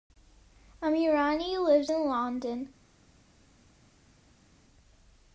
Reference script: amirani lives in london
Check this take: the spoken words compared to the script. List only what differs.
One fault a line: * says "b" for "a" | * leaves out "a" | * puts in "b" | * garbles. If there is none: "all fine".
all fine